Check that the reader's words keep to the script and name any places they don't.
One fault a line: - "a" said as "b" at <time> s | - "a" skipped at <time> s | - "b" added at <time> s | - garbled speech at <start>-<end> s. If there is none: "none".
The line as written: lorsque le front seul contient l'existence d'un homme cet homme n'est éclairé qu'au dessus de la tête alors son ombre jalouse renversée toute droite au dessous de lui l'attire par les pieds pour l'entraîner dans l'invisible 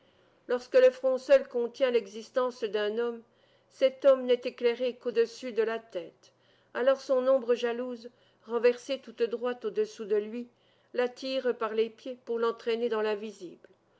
none